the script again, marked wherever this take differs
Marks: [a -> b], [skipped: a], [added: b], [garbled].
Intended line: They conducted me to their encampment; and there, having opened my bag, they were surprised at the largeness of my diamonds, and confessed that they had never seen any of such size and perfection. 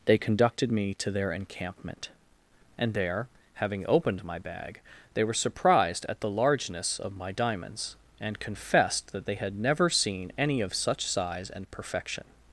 They conducted me to their encampment; and there, having opened my bag, they were surprised at the largeness of my diamonds, and confessed that they had never seen any of such size and perfection.